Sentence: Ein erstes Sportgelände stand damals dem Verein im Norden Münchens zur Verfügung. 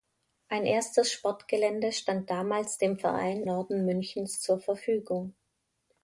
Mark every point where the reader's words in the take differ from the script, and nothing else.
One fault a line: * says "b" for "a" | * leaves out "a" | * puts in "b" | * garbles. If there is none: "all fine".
* leaves out "im"